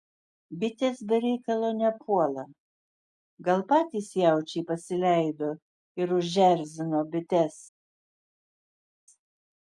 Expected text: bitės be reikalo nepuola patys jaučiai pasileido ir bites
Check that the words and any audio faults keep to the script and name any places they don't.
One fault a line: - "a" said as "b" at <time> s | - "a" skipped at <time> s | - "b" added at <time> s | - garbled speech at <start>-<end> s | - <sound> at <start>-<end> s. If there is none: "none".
- "gal" added at 3.5 s
- "užerzino" added at 6.2 s